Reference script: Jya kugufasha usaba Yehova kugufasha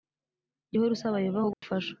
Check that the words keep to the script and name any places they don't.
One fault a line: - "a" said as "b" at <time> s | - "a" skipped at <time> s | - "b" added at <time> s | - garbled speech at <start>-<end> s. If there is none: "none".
- "kugufasha" said as "uhora" at 0.8 s